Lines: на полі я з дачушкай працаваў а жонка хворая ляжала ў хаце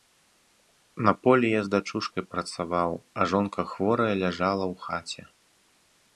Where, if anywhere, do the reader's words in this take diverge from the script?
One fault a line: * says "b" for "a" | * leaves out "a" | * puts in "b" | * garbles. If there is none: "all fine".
all fine